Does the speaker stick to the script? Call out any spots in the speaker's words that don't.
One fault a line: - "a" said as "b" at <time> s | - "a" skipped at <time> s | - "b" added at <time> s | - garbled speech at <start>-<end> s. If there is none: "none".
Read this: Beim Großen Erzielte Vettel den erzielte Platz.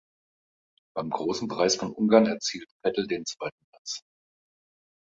- "Preis von Ungarn" added at 1.5 s
- "erzielte" said as "zweiten" at 3.2 s